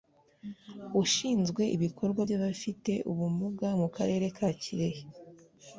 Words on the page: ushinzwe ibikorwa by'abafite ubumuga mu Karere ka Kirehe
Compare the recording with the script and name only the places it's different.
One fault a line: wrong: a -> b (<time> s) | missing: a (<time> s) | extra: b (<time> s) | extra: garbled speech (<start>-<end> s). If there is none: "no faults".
no faults